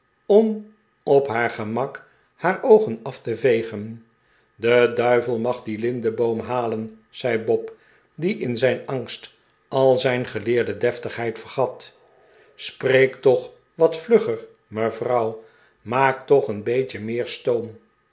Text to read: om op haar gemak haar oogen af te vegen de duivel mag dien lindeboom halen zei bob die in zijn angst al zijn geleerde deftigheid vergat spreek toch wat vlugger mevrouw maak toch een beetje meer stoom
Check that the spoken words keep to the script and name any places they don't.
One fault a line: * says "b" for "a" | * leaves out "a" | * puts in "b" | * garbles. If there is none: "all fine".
all fine